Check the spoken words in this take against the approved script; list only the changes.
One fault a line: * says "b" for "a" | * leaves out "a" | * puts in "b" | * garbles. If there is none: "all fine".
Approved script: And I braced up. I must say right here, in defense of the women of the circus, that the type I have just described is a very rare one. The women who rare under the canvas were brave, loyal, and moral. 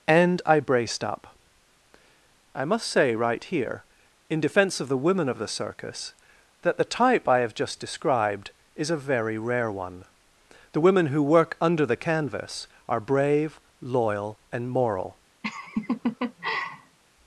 * says "work" for "rare"
* says "are" for "were"